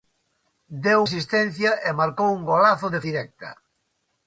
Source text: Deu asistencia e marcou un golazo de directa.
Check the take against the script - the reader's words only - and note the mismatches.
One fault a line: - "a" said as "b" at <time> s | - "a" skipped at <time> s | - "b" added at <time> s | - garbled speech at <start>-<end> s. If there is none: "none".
none